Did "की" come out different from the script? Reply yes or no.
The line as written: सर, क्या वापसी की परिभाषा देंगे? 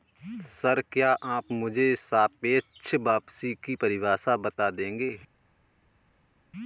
no